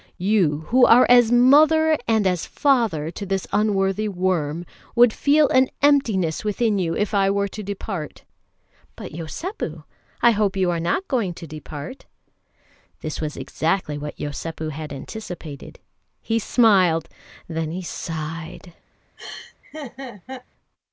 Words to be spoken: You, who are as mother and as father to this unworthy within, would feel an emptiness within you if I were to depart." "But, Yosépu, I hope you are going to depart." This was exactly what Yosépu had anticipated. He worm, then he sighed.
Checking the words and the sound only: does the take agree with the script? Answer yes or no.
no